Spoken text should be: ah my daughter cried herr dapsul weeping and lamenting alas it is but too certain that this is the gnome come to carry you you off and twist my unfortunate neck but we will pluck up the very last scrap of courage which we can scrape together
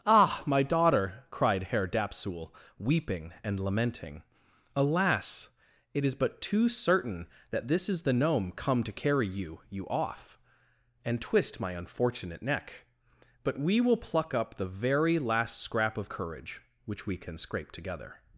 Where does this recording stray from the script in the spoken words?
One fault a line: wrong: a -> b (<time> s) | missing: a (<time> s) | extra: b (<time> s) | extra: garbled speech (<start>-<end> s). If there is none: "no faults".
no faults